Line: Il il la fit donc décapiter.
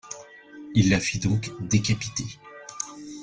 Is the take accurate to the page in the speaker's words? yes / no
no